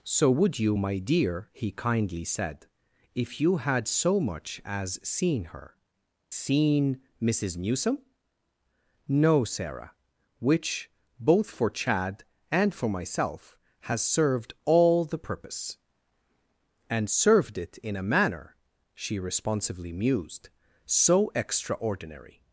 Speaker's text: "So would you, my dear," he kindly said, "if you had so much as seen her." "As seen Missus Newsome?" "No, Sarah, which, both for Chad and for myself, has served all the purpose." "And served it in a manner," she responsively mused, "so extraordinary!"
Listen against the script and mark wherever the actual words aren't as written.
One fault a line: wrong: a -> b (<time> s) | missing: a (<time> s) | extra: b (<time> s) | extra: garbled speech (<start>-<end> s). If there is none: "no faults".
missing: As (5.7 s)